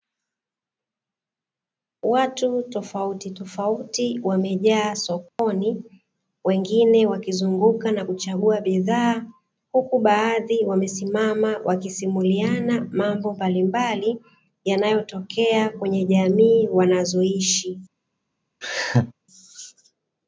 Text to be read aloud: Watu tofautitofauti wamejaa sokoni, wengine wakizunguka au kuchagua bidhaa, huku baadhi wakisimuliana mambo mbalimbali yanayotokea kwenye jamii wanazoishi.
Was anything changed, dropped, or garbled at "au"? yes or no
yes